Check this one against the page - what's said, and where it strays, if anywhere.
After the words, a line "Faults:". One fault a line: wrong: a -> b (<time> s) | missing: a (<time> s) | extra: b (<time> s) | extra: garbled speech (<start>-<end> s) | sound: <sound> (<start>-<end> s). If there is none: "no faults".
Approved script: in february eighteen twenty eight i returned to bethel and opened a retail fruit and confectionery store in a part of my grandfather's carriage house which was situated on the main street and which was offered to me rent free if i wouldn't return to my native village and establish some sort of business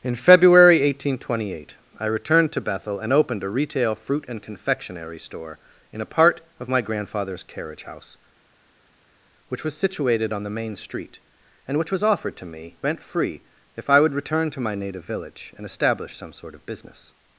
in february eighteen twenty eight i returned to bethel and opened a retail fruit and confectionery store in a part of my grandfather's carriage house which was situated on the main street and which was offered to me rent free if i would return to my native village and establish some sort of business
Faults:
wrong: wouldn't -> would (14.0 s)